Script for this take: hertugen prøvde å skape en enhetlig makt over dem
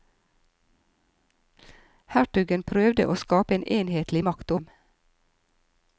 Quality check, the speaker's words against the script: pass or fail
fail